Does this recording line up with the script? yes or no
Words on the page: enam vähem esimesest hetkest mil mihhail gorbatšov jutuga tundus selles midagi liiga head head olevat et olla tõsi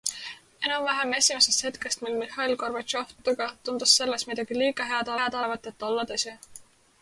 yes